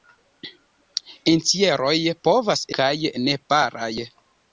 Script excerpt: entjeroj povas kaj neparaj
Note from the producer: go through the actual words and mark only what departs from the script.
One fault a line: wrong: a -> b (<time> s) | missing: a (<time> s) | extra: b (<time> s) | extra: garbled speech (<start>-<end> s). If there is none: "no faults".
no faults